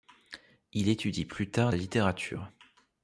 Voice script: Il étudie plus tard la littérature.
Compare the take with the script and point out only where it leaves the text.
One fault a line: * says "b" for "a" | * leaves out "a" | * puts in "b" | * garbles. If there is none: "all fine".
all fine